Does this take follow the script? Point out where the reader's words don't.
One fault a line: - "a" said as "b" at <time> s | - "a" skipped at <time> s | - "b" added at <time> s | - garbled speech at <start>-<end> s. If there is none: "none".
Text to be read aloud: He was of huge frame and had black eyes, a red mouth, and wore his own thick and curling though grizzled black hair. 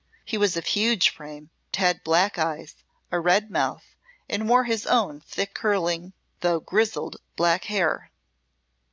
- "and" skipped at 1.5 s
- "and" skipped at 5.6 s